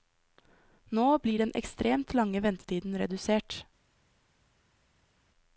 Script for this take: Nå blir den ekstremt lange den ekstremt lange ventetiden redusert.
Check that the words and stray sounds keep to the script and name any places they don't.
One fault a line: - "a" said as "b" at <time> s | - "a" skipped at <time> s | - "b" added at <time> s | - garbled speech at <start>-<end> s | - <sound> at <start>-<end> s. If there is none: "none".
- "den ekstremt lange" skipped at 2.4 s